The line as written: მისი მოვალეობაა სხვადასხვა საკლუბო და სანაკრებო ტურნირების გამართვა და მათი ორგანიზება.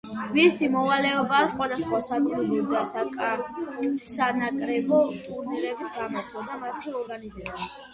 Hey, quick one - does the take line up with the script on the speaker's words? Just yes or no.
yes